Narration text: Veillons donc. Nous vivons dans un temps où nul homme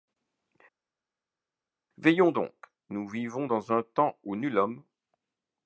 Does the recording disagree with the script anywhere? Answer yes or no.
no